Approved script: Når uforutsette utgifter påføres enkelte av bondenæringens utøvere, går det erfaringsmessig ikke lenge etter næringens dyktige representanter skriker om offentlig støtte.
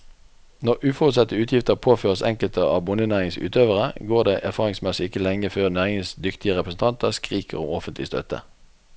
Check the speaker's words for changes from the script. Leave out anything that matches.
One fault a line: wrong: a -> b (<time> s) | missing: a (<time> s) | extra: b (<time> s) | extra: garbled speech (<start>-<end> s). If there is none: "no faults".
wrong: etter -> før (5.5 s)